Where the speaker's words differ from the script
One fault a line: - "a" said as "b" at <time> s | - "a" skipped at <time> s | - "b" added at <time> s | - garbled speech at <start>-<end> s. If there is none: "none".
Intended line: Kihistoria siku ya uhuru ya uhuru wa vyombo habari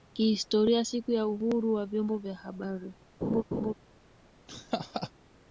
- "ya uhuru" skipped at 1.7 s
- "vya" added at 2.2 s